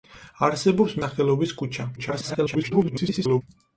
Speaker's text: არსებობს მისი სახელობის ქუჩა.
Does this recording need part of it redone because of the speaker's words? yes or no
yes